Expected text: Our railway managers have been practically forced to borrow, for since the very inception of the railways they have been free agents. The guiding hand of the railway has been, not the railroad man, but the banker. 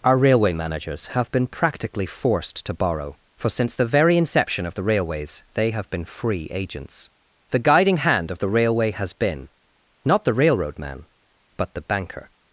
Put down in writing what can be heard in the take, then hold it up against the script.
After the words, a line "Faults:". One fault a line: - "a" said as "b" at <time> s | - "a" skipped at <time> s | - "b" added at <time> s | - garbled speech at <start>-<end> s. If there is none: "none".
Our railway managers have been practically forced to borrow, for since the very inception of the railways they have been free agents. The guiding hand of the railway has been, not the railroad man, but the banker.
Faults:
none